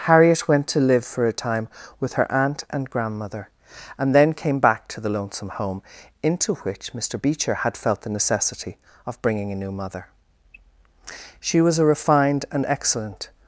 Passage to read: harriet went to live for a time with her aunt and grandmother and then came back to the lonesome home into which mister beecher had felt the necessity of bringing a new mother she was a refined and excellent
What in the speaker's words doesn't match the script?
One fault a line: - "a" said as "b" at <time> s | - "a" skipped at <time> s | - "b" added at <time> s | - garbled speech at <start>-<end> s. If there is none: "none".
none